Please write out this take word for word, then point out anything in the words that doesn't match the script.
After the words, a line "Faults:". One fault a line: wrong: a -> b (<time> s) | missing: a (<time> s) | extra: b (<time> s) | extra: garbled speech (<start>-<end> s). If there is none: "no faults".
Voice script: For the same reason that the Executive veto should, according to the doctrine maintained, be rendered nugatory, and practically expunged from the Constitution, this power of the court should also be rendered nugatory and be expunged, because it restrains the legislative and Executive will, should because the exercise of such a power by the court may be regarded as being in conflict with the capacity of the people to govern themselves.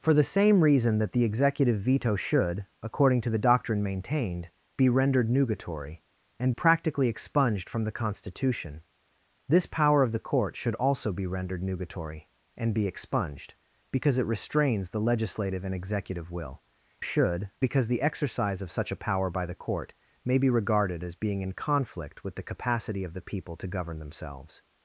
For the same reason that the Executive veto should, according to the doctrine maintained, be rendered nugatory, and practically expunged from the Constitution, this power of the court should also be rendered nugatory and be expunged, because it restrains the legislative and Executive will, should because the exercise of such a power by the court may be regarded as being in conflict with the capacity of the people to govern themselves.
Faults:
no faults